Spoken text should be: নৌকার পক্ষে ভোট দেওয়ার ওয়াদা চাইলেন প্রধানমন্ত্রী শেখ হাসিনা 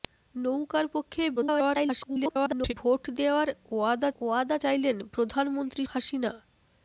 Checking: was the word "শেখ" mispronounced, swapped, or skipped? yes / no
yes